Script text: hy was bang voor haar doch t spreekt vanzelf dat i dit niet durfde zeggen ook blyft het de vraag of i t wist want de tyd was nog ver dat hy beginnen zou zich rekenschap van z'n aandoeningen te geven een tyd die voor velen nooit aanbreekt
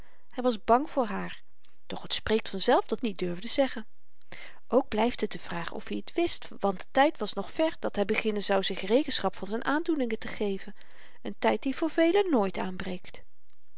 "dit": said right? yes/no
no